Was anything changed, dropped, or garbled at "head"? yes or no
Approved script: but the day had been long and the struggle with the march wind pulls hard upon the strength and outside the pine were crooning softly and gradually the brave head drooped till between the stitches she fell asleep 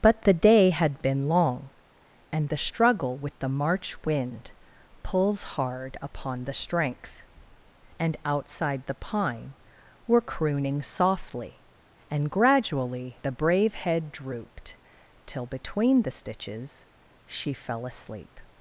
no